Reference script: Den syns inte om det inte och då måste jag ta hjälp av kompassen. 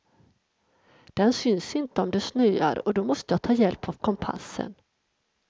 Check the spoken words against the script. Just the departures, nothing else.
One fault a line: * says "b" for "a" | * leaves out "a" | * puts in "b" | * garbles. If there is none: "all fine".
* says "snöar" for "inte"